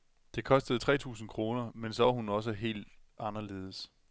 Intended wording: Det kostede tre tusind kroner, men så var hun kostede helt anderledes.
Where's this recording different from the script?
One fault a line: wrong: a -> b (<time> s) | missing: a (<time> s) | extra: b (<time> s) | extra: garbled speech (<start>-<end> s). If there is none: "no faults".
wrong: kostede -> også (2.3 s)